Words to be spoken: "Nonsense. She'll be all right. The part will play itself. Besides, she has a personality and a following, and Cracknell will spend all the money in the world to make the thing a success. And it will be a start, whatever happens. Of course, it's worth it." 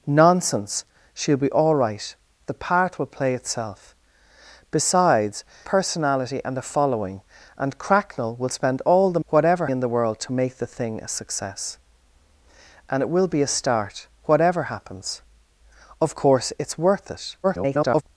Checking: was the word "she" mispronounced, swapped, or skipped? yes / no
yes